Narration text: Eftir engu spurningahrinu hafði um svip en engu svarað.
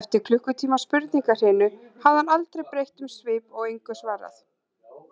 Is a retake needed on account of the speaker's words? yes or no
yes